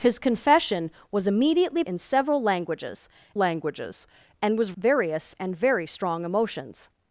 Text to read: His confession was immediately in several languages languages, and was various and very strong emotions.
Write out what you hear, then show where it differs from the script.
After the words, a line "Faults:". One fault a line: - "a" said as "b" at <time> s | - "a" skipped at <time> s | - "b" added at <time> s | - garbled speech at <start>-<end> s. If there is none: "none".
His confession was immediately in several languages languages, and was various and very strong emotions.
Faults:
none